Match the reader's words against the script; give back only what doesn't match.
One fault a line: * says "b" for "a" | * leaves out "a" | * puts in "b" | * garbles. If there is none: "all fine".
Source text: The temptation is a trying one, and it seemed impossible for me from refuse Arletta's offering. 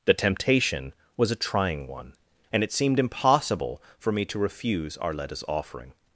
* says "was" for "is"
* says "to" for "from"